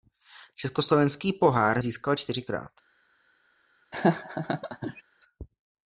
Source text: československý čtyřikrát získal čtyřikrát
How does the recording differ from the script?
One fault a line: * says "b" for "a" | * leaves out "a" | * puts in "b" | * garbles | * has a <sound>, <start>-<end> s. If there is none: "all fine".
* says "pohár" for "čtyřikrát"
* has a laugh, 3.9-5.0 s